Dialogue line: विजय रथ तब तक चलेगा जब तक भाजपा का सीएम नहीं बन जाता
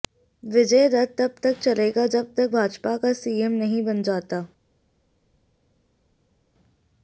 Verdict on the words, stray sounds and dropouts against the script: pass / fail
pass